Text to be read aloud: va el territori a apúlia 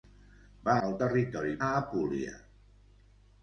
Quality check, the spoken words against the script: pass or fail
pass